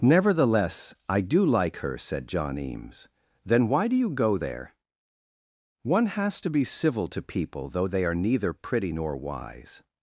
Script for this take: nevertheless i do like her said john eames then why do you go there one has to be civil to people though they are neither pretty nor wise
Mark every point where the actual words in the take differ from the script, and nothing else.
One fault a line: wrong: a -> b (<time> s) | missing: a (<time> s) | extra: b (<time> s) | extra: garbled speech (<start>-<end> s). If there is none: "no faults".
no faults